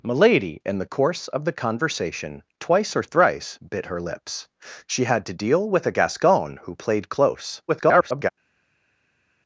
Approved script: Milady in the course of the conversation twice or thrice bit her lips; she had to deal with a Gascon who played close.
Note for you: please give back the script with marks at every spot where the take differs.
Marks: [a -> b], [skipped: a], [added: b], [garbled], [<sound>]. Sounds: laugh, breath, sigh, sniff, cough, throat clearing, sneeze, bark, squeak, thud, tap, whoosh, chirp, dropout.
Milady in the course of the conversation twice or thrice bit her lips; she had to deal with a Gascon who played close. [garbled]